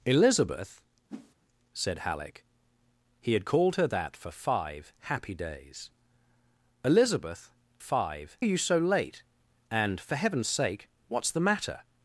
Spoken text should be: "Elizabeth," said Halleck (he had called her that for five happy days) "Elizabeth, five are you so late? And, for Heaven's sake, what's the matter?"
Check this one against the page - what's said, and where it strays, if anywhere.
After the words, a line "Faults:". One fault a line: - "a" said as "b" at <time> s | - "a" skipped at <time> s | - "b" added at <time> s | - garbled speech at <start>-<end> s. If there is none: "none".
"Elizabeth," said Halleck (he had called her that for five happy days) "Elizabeth, five are you so late? And, for Heaven's sake, what's the matter?"
Faults:
none